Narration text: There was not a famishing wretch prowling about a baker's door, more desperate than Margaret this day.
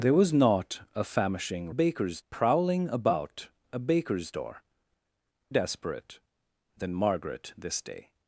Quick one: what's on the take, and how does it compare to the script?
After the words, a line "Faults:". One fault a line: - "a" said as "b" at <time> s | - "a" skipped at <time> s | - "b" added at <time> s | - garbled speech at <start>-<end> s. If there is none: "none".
There was not a famishing baker's prowling about a baker's door, desperate than Margaret this day.
Faults:
- "wretch" said as "baker's" at 1.7 s
- "more" skipped at 4.6 s